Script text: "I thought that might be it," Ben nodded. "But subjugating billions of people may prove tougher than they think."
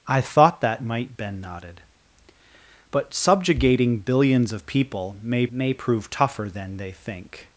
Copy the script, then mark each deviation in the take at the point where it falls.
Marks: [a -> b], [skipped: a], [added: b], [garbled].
"I thought that might [skipped: be it,"] Ben nodded. "But subjugating billions of people may [added: may] prove tougher than they think."